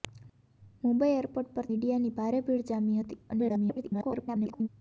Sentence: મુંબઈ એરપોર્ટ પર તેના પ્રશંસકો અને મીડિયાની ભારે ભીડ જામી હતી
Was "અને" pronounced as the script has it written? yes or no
no